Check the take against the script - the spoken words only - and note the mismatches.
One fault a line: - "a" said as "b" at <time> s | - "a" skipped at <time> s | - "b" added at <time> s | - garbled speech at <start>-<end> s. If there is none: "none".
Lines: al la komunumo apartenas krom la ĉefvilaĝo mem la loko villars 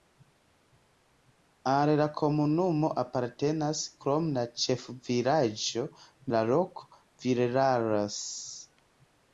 - "mem" skipped at 5.8 s